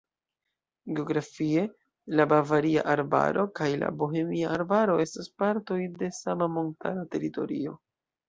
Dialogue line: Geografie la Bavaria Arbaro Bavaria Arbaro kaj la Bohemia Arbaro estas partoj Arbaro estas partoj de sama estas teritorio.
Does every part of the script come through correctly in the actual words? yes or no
no